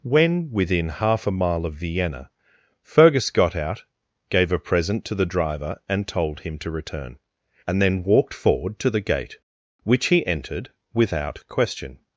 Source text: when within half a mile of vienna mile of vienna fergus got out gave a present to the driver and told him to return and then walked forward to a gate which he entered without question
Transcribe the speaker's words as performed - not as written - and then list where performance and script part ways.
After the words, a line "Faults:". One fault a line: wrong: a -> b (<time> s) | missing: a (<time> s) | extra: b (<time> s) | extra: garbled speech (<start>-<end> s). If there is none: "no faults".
when within half a mile of vienna fergus got out gave a present to the driver and told him to return and then walked forward to the gate which he entered without question
Faults:
missing: mile of vienna (2.3 s)
wrong: a -> the (8.9 s)